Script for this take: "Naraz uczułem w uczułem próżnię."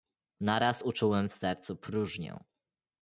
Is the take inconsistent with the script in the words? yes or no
yes